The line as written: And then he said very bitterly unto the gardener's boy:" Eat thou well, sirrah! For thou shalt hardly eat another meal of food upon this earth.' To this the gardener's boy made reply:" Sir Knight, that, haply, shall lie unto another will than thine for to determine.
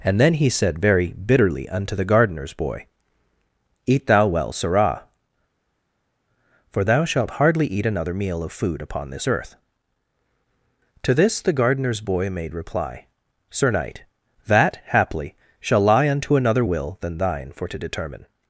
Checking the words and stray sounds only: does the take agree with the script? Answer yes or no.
yes